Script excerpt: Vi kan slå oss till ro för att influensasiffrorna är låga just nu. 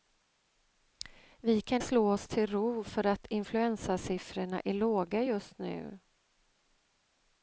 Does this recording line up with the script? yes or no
yes